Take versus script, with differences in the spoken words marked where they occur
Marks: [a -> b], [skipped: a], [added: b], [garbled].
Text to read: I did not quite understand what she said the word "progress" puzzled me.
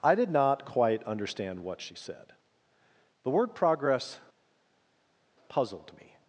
I did not quite understand what she said the word "progress" puzzled me.